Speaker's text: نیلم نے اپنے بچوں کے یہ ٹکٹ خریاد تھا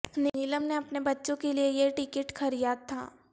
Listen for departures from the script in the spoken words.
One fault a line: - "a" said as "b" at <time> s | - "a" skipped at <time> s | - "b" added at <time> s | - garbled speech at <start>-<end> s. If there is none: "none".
- "لیے" added at 1.5 s